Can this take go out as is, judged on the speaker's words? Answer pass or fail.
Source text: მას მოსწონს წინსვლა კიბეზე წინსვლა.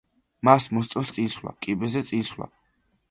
pass